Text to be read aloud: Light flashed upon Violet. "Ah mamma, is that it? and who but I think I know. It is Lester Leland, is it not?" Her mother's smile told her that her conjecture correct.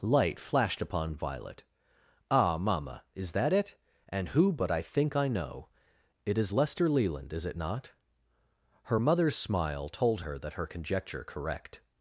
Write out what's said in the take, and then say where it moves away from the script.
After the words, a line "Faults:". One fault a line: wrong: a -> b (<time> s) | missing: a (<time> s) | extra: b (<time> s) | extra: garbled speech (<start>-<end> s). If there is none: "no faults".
Light flashed upon Violet. "Ah mamma, is that it? and who but I think I know. It is Lester Leland, is it not?" Her mother's smile told her that her conjecture correct.
Faults:
no faults